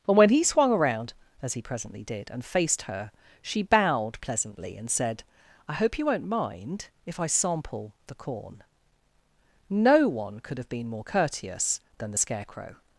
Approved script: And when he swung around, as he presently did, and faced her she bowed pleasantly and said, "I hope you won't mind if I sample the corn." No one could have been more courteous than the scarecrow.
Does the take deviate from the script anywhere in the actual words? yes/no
no